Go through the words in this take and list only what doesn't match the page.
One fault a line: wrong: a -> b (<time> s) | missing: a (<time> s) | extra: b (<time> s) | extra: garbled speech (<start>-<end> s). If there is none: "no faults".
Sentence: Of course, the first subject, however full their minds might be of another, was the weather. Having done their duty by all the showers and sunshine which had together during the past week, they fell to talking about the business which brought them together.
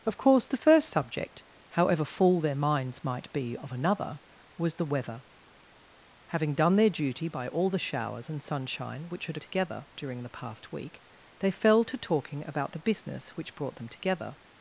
no faults